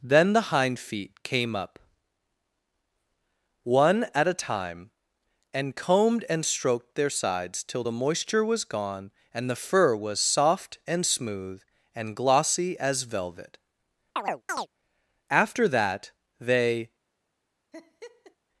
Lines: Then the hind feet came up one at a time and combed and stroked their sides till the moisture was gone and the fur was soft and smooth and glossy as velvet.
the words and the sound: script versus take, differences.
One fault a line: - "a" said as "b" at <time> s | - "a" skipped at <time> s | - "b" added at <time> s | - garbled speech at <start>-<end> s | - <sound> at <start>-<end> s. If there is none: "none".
- chirp at 14.2-14.7 s
- "After that they" added at 15.3 s
- laugh at 17.7-18.4 s